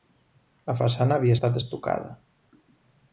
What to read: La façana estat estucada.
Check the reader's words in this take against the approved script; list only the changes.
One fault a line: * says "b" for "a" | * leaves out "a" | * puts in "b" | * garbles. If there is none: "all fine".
* puts in "havia"